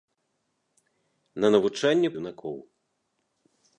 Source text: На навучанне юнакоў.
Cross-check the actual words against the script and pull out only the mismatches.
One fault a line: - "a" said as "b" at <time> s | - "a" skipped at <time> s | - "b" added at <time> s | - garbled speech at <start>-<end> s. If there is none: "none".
none